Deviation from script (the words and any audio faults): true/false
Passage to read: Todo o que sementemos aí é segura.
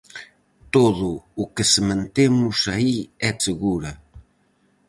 false